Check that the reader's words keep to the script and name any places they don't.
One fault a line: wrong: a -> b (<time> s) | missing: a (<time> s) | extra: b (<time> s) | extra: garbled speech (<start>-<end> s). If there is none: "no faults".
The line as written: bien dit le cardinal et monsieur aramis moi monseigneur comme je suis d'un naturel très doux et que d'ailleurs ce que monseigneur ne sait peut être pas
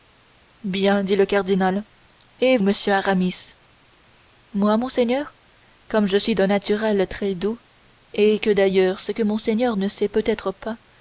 no faults